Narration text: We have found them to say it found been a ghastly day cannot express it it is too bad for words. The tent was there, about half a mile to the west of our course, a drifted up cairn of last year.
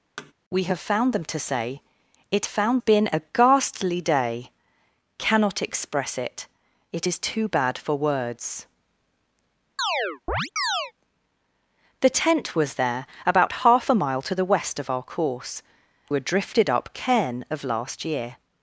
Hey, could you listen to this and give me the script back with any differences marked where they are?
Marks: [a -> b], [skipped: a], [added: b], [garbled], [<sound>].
[thud] We have found them to say it found been a ghastly day cannot express it it is too bad for words. [chirp] The tent was there, about half a mile to the west of our course, a drifted up cairn of last year.